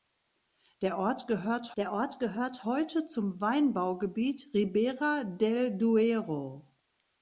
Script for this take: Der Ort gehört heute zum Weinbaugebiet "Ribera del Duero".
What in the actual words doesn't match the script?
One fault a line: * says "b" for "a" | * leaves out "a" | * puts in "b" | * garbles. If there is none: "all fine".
* puts in "der Ort gehört"